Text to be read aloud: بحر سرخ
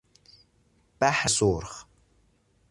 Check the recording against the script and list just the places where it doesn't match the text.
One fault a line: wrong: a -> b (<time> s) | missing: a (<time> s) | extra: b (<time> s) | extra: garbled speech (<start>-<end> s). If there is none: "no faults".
no faults